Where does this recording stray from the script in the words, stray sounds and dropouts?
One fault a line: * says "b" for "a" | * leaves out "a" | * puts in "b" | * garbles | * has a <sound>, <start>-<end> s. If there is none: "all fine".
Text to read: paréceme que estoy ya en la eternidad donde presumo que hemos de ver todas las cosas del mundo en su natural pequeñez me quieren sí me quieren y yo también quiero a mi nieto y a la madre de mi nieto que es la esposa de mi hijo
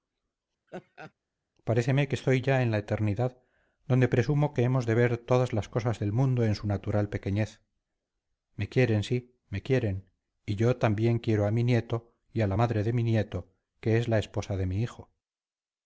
* has a laugh, 0.7-1.1 s